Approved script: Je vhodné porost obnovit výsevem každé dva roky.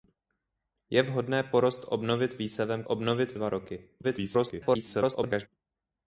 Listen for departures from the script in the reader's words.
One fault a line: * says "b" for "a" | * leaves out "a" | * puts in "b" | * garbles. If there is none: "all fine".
* says "obnovit" for "každé"
* garbles